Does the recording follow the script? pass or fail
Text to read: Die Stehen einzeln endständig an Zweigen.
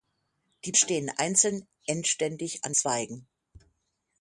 pass